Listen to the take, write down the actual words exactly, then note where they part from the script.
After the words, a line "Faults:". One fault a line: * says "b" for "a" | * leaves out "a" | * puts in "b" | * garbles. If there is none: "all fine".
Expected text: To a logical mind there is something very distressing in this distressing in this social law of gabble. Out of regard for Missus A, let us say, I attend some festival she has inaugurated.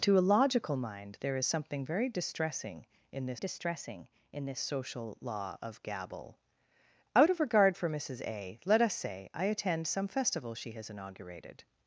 To a logical mind there is something very distressing in this distressing in this social law of gabble. Out of regard for Missus A, let us say, I attend some festival she has inaugurated.
Faults:
all fine